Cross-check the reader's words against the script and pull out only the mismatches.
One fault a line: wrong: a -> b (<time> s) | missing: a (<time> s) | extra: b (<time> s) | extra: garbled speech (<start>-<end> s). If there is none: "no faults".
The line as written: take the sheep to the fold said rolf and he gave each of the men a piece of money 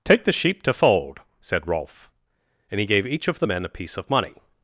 missing: the (0.7 s)